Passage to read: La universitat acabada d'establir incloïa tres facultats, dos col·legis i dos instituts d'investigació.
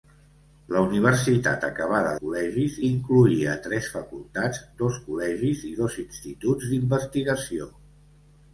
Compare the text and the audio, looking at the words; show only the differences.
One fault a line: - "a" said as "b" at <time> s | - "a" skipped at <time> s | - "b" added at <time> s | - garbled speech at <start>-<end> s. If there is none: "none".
- "d'establir" said as "col·legis" at 2.2 s